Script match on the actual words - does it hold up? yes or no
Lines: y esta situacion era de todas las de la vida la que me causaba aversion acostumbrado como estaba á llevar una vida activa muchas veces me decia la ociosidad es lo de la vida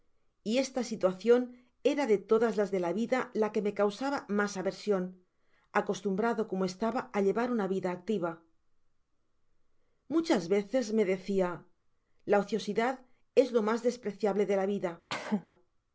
no